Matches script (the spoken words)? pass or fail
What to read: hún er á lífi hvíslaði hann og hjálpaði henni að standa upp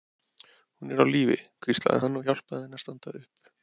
pass